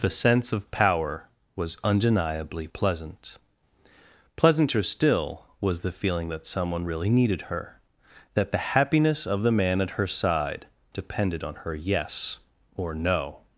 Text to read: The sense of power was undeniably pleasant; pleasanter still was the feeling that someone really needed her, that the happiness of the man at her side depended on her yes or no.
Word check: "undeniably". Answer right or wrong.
right